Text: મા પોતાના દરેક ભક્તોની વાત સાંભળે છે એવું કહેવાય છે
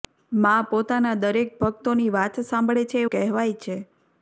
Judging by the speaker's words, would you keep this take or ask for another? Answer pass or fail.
fail